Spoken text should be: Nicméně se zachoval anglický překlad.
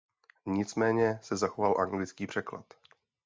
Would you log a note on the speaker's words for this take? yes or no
no